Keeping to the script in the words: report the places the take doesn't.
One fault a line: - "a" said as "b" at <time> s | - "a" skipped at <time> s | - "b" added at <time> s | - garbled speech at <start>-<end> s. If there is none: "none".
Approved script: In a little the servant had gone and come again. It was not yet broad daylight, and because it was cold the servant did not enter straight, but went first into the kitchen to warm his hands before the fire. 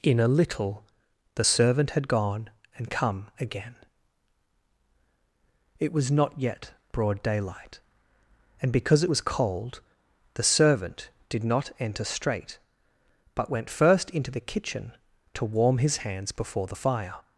none